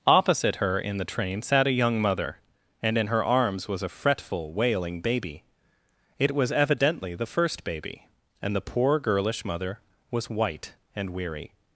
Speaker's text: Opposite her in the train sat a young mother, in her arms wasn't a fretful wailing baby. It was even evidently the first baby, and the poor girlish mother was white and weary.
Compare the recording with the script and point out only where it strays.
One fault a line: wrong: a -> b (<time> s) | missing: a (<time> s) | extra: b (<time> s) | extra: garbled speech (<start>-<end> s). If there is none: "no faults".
extra: and (2.8 s)
wrong: wasn't -> was (3.7 s)
missing: even (6.5 s)